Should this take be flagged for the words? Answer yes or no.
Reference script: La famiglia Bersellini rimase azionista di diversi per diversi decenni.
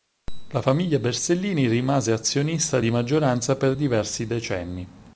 yes